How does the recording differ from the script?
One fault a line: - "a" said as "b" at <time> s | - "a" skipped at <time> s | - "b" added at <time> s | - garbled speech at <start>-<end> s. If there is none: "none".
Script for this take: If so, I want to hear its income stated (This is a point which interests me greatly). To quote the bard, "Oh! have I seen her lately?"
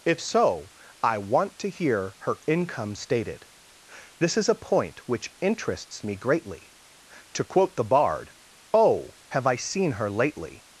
- "its" said as "her" at 2.2 s